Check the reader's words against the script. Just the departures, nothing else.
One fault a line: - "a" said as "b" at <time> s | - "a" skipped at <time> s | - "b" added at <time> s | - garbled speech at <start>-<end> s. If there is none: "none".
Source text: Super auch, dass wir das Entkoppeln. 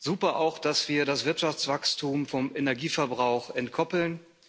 - "Wirtschaftswachstum vom Energieverbrauch" added at 1.2 s